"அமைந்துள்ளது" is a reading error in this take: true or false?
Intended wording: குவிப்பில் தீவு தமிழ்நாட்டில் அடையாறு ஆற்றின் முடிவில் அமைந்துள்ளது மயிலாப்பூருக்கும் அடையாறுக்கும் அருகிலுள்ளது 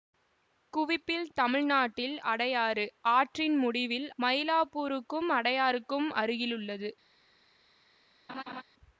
true